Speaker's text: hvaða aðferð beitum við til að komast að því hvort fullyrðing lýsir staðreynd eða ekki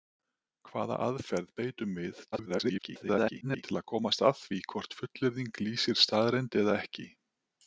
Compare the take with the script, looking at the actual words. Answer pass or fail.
fail